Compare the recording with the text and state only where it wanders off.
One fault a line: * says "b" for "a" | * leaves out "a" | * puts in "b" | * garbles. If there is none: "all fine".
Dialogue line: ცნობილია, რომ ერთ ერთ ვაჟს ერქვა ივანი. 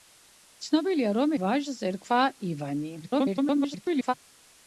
* leaves out "ერთ ერთ"
* garbles